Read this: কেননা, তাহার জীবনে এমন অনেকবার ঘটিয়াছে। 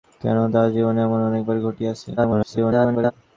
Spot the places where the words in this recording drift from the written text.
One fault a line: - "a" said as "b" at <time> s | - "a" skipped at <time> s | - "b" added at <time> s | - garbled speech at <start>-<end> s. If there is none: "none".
- garbled speech at 2.2-3.1 s